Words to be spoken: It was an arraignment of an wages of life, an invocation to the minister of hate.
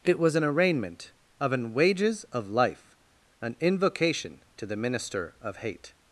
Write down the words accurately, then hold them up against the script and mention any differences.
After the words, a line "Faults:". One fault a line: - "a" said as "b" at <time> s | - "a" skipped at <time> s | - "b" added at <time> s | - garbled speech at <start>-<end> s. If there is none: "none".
It was an arraignment of an wages of life, an invocation to the minister of hate.
Faults:
none